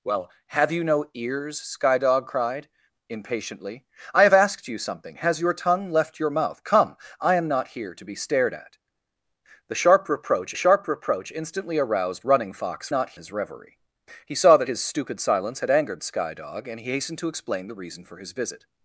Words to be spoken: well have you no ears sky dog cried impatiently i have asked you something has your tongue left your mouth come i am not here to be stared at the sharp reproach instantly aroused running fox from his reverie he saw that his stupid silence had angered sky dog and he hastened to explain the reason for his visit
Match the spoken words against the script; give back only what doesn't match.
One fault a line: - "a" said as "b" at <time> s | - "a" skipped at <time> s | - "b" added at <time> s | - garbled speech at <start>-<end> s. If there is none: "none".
- "sharp reproach" added at 10.5 s
- "from" said as "not" at 12.9 s